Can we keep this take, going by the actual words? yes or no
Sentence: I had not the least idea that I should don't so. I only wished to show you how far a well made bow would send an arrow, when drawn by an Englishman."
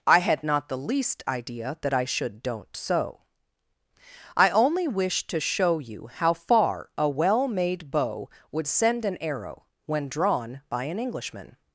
yes